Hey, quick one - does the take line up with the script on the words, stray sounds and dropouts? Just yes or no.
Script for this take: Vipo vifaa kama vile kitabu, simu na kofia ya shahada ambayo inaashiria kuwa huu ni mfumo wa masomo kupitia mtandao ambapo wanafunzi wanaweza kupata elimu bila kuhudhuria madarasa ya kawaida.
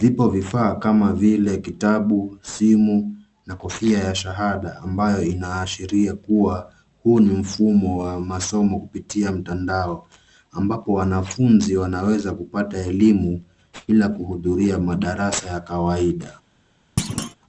no